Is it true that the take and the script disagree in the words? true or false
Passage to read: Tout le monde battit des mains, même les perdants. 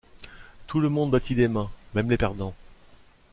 false